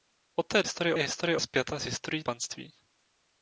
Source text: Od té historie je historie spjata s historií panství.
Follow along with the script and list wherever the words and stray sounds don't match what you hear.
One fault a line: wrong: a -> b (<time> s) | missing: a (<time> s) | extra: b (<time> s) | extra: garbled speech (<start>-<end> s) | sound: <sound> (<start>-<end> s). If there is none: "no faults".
no faults